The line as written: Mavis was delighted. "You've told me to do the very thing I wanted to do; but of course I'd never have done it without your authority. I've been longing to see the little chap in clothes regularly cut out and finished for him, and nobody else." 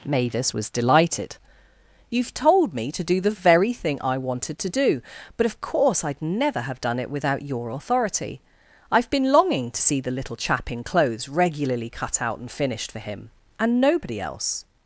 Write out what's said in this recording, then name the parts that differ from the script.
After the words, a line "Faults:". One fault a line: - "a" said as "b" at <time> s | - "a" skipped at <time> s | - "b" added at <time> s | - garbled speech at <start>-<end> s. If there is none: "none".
Mavis was delighted. "You've told me to do the very thing I wanted to do; but of course I'd never have done it without your authority. I've been longing to see the little chap in clothes regularly cut out and finished for him, and nobody else."
Faults:
none